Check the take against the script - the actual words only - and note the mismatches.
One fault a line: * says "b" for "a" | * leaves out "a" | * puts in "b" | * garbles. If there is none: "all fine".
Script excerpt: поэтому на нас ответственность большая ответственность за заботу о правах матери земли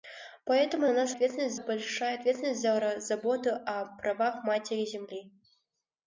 all fine